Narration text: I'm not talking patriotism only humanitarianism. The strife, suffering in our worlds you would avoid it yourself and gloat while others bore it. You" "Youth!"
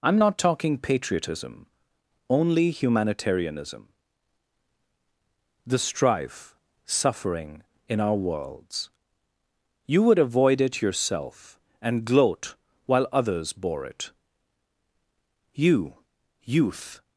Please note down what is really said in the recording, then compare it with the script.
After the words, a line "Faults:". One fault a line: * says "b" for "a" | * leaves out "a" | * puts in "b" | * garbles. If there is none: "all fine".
I'm not talking patriotism only humanitarianism. The strife, suffering in our worlds you would avoid it yourself and gloat while others bore it. You" "Youth!"
Faults:
all fine